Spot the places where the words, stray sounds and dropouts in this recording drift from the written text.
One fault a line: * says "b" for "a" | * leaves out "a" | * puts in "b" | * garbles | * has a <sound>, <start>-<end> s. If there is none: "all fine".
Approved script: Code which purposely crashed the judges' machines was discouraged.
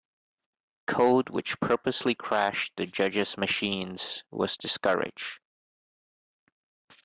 all fine